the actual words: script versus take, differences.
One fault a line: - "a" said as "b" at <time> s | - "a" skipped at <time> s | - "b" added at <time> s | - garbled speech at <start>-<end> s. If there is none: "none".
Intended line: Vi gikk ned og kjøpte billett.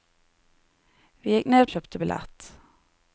none